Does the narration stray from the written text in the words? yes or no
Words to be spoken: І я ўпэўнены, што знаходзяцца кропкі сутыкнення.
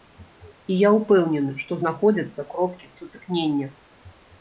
no